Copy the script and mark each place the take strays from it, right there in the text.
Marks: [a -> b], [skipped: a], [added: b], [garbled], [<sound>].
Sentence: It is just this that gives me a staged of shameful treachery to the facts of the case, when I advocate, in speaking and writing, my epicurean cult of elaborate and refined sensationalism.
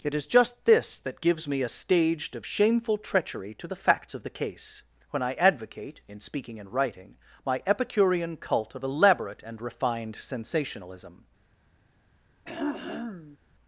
It is just this that gives me a staged of shameful treachery to the facts of the case, when I advocate, in speaking and writing, my epicurean cult of elaborate and refined sensationalism. [throat clearing]